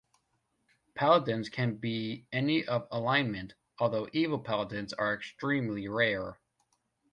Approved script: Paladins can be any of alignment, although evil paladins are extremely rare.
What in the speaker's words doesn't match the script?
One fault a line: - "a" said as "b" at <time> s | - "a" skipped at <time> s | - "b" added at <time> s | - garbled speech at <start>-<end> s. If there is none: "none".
none